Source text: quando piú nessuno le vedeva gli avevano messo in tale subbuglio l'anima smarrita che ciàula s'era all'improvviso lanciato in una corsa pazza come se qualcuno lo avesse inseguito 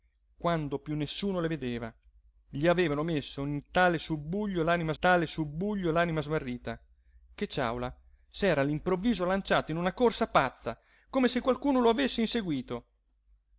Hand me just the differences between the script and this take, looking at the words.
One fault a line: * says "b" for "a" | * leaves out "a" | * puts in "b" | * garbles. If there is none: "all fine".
* puts in "tale subbuglio l'anima"